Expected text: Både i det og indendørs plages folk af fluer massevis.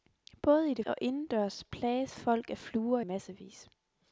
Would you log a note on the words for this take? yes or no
no